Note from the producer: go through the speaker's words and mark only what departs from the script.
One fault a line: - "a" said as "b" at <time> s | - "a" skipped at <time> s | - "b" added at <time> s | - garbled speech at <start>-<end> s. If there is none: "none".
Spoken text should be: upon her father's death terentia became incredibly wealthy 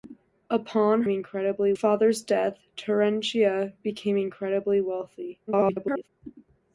- "her" said as "incredibly" at 1.1 s
- garbled speech at 5.5-6.1 s